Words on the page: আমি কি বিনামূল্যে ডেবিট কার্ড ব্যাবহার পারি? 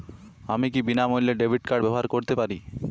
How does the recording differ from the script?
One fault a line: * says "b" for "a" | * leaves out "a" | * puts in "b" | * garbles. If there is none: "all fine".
* puts in "করতে"